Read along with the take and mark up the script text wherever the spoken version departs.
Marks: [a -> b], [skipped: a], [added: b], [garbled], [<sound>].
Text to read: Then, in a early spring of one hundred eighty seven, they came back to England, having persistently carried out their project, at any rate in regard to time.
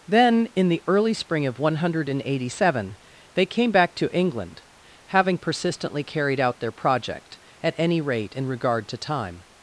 Then, in [a -> the] early spring of one hundred eighty seven, they came back to England, having persistently carried out their project, at any rate in regard to time.